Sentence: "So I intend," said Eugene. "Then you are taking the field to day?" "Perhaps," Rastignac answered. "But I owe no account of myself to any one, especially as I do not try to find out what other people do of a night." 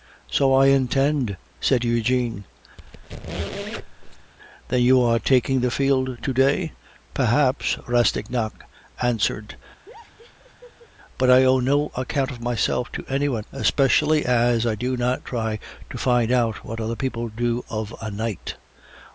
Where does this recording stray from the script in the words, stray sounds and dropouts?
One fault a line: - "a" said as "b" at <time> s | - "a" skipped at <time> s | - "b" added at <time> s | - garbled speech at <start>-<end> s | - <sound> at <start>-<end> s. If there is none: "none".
- squeak at 2.8-4.3 s
- laugh at 9.9-10.9 s